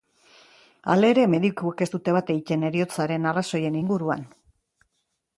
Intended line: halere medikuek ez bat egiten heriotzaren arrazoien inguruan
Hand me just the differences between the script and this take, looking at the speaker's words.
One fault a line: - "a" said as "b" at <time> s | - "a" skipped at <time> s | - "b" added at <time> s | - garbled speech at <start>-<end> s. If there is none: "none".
- "dute" added at 2.0 s